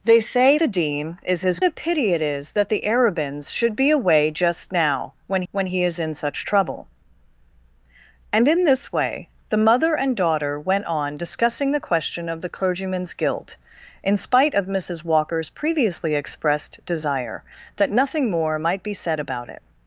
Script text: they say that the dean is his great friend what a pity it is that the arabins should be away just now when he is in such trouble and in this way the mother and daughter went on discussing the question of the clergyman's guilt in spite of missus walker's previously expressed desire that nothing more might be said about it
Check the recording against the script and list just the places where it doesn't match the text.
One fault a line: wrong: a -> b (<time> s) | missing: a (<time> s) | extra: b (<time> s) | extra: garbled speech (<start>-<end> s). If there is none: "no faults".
missing: that (0.6 s)
missing: great friend what (1.6 s)
extra: when (5.5 s)